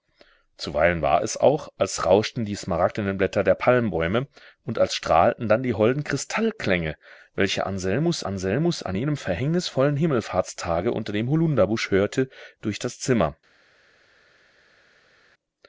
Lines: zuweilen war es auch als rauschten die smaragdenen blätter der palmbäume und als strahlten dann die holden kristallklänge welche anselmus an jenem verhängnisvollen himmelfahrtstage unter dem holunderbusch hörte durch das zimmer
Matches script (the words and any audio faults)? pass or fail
fail